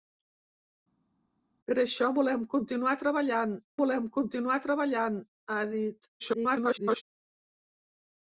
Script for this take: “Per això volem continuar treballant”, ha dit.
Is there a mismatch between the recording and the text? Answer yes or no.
yes